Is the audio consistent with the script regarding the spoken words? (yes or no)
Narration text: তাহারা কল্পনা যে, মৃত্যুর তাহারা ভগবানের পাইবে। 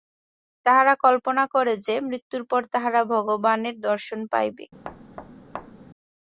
no